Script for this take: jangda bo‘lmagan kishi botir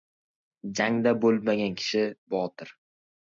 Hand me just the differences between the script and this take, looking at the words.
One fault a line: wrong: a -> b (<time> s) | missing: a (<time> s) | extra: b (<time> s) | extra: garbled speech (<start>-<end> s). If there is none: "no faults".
no faults